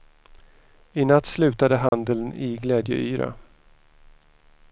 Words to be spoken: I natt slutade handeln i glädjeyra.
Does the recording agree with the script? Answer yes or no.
yes